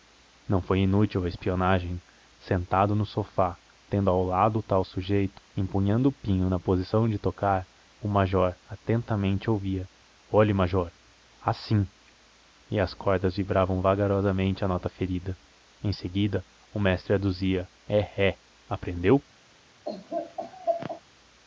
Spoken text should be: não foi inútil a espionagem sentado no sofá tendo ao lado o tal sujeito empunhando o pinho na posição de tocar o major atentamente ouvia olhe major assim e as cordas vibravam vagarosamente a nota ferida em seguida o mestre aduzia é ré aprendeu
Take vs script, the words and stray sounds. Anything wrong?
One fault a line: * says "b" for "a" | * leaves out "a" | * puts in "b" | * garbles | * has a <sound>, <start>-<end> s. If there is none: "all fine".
* has a laugh, 19.8-21.0 s